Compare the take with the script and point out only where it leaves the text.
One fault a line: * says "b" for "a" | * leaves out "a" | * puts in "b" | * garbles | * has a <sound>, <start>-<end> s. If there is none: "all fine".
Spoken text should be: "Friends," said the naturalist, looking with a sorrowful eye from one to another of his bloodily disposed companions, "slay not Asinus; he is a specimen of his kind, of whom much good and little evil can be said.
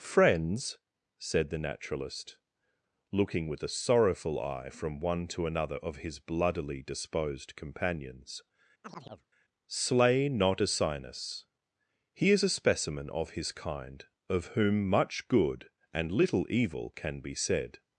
* has a chirp, 8.8-9.3 s